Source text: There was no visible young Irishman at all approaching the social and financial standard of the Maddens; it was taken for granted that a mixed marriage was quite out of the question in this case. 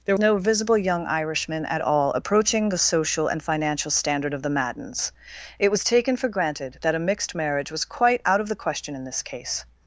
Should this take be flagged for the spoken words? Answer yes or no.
yes